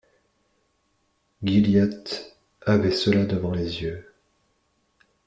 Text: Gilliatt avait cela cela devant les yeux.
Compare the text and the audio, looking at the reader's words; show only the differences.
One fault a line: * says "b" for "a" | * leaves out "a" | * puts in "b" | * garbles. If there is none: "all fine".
* leaves out "cela"